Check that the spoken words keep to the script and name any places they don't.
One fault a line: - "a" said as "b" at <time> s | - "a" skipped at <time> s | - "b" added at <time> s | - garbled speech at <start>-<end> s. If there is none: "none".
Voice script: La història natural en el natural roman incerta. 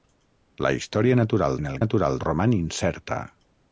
none